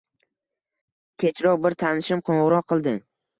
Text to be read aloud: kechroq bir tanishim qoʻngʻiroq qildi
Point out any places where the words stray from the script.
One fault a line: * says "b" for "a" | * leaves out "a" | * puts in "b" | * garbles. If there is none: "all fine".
all fine